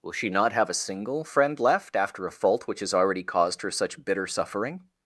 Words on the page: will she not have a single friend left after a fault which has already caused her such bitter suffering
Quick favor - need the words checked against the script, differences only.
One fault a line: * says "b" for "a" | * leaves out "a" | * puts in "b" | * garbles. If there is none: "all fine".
all fine